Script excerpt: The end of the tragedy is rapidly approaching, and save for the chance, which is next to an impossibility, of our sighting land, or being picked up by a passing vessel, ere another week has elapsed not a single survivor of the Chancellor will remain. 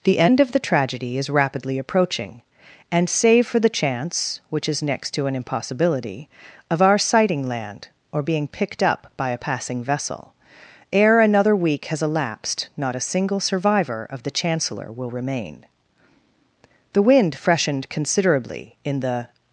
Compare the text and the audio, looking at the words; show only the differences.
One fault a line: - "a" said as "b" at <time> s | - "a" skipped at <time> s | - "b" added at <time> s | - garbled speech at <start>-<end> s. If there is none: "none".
- "The wind freshened considerably in the" added at 16.9 s